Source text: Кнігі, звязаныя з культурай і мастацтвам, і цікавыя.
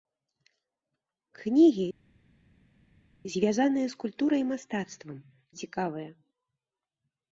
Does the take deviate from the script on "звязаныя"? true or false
false